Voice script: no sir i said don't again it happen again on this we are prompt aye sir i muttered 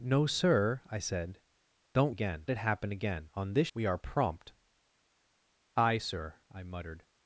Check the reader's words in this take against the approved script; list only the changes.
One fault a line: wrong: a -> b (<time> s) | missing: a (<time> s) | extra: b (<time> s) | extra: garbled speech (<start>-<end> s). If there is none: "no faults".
no faults